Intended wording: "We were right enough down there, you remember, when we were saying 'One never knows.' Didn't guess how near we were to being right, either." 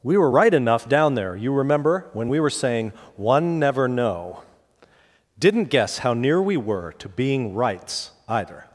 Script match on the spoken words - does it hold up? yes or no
no